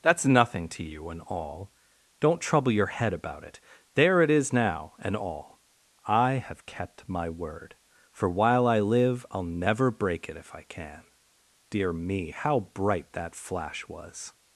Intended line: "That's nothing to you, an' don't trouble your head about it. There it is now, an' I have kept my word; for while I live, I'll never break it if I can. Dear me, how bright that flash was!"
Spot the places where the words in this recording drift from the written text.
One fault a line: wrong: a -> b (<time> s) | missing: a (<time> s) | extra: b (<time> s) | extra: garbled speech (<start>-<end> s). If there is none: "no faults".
wrong: an -> and all (1.1 s)
wrong: an -> and all (5.0 s)